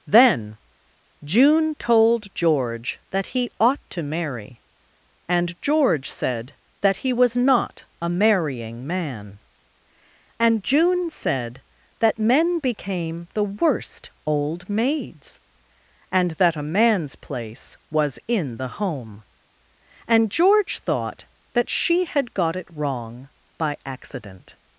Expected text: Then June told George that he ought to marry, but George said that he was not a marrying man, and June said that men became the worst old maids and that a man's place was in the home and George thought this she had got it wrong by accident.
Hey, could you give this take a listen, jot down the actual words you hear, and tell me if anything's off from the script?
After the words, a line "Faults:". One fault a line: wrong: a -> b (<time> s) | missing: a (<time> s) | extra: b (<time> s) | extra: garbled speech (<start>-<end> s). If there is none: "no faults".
Then June told George that he ought to marry, and George said that he was not a marrying man, and June said that men became the worst old maids and that a man's place was in the home and George thought that she had got it wrong by accident.
Faults:
wrong: but -> and (5.3 s)
wrong: this -> that (21.5 s)